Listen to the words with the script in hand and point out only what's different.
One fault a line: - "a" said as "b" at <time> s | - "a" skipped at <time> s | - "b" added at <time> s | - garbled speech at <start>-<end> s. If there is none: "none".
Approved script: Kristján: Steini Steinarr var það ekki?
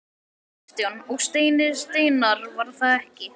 - "Og" added at 1.1 s